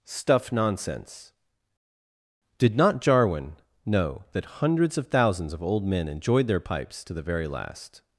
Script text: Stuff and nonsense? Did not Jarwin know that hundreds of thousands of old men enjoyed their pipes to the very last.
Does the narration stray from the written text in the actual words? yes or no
yes